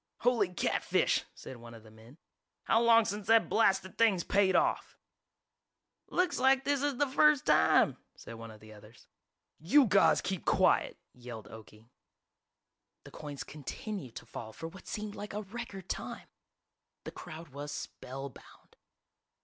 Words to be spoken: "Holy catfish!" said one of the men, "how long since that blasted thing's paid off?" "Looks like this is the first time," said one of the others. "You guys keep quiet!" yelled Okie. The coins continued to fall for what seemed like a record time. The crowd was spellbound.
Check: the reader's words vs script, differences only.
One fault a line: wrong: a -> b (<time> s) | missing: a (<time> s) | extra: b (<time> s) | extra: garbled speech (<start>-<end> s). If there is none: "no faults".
no faults